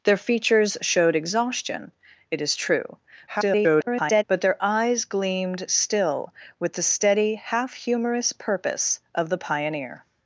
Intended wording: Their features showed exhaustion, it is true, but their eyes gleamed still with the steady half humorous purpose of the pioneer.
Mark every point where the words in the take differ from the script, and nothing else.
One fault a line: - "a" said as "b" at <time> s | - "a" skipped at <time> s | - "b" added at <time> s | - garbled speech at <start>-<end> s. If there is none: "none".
- garbled speech at 3.3-4.2 s